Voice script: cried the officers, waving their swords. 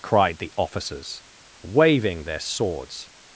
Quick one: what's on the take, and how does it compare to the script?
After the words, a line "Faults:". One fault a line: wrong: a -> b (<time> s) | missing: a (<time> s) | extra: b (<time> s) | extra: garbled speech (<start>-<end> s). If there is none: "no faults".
cried the officers, waving their swords.
Faults:
no faults